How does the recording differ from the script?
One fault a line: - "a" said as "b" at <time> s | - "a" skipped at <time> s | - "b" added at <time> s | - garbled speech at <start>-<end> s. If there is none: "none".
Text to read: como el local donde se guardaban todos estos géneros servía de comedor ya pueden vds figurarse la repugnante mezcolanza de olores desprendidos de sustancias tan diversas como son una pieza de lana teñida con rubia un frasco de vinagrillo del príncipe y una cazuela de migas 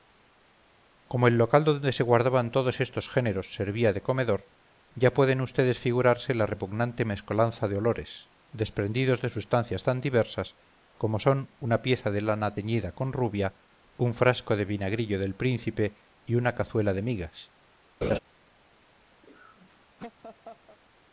none